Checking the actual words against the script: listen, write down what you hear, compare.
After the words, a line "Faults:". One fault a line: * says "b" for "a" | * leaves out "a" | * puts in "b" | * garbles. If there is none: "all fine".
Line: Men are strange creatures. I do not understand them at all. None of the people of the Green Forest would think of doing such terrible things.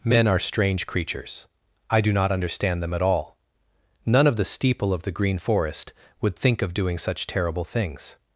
Men are strange creatures. I do not understand them at all. None of the steeple of the Green Forest would think of doing such terrible things.
Faults:
* says "steeple" for "people"